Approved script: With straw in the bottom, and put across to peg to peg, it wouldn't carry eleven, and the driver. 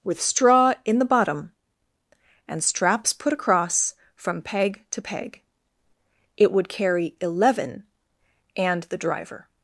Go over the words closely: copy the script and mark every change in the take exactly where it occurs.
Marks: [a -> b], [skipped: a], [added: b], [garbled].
With straw in the bottom, and [added: straps] put across [to -> from] peg to peg, it [wouldn't -> would] carry eleven, and the driver.